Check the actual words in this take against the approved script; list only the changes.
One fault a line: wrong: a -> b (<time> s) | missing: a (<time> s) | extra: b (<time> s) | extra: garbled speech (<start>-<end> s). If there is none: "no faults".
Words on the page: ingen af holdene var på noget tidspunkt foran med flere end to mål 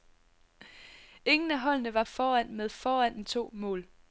missing: på noget tidspunkt (2.0 s)
wrong: flere -> foran (2.7 s)